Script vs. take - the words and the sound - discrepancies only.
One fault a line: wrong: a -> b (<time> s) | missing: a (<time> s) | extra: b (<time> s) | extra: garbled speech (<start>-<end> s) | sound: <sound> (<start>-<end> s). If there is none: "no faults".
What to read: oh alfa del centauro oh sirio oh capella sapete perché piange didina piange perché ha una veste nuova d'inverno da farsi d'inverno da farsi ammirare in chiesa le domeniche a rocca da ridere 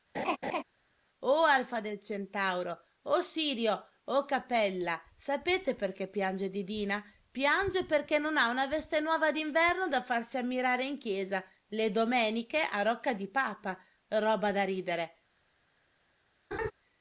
sound: laugh (0.1-0.6 s)
extra: non (8.2 s)
missing: d'inverno da farsi (10.4 s)
extra: di papa roba (13.1 s)
sound: laugh (16.5-16.7 s)